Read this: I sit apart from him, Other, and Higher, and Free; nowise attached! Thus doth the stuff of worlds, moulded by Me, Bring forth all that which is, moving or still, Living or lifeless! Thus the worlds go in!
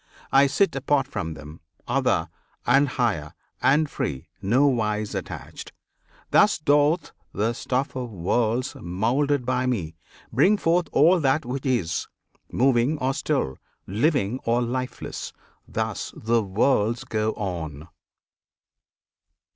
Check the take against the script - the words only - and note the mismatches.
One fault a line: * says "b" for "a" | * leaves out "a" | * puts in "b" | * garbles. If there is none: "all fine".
* says "them" for "him"
* says "on" for "in"